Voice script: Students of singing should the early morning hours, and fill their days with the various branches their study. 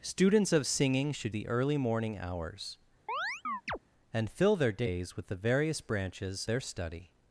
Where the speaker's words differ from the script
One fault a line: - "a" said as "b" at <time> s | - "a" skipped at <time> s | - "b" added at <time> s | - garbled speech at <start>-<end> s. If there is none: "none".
none